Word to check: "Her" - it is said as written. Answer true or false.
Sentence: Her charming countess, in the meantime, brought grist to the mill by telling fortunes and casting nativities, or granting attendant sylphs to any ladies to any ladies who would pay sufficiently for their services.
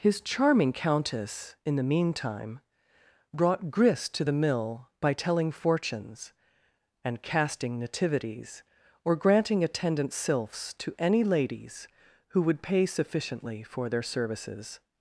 false